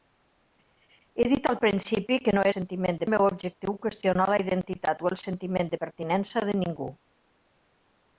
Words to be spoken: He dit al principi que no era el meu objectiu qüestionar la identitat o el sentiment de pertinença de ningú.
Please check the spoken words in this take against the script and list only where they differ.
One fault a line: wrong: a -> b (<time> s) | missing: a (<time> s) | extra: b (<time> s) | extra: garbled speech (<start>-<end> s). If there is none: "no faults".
wrong: era -> sentiment (2.5 s)